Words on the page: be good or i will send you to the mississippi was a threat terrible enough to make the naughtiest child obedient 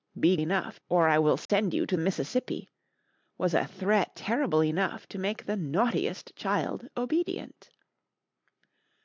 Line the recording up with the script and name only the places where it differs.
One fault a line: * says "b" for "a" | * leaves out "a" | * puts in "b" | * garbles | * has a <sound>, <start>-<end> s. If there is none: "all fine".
* says "enough" for "good"
* has a dropout, 1.5-1.5 s
* leaves out "the"